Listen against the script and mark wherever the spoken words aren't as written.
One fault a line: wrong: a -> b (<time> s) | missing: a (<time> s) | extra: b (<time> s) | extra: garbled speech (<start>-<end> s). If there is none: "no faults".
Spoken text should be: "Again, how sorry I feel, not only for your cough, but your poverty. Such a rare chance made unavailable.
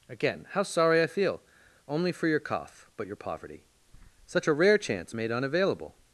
missing: not (1.4 s)